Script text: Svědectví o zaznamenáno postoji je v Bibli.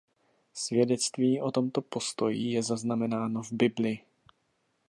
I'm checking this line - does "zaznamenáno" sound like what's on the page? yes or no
no